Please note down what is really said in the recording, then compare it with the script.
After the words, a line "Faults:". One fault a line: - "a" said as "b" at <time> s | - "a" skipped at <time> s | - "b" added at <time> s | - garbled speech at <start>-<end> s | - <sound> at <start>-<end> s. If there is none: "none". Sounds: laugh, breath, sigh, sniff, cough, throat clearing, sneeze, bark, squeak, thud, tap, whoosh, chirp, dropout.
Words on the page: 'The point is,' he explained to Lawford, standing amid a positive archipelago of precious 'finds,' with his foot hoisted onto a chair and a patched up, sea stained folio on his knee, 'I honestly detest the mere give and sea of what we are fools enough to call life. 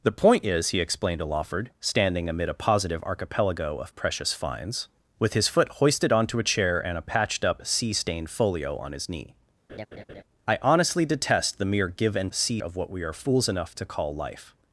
'The point is,' he explained to Lawford, standing amid a positive archipelago of precious 'finds,' with his foot hoisted onto a chair and a patched up, sea stained folio on his knee, 'I honestly detest the mere give and sea of what we are fools enough to call life.
Faults:
- laugh at 9.7-10.2 s